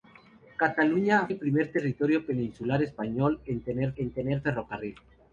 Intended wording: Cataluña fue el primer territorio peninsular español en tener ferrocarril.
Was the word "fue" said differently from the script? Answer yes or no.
yes